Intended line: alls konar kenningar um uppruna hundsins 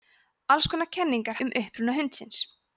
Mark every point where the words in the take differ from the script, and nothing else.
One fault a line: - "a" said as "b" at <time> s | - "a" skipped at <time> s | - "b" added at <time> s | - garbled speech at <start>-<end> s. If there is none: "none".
none